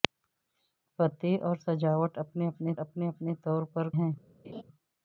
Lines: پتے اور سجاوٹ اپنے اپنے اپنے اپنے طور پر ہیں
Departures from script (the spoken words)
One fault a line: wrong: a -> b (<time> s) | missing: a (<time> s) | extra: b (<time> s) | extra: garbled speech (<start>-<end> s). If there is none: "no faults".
no faults